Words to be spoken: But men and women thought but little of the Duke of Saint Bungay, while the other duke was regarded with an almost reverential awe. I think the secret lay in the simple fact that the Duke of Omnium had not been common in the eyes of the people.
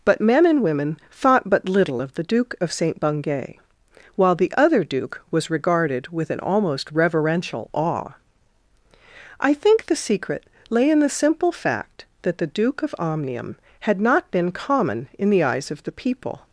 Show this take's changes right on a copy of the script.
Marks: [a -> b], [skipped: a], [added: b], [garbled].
But men and women thought but little of the Duke of Saint Bungay, while the other duke was regarded with an almost reverential awe. I think the secret lay in the simple fact that the Duke of Omnium had not been common in the eyes of the people.